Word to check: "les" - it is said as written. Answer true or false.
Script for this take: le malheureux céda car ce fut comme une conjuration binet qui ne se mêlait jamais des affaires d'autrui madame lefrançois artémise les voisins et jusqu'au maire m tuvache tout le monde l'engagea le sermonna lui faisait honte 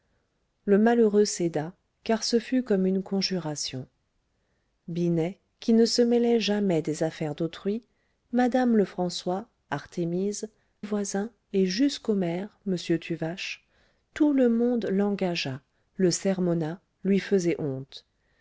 false